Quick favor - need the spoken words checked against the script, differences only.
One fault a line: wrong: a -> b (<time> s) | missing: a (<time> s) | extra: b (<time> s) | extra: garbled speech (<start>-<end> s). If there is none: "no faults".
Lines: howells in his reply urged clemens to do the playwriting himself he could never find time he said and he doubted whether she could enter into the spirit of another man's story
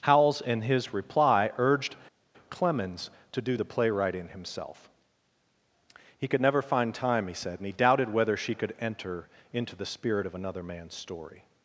no faults